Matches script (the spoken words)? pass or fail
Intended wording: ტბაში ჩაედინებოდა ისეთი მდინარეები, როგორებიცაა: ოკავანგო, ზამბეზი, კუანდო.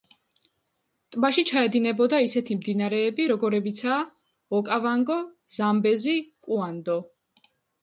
pass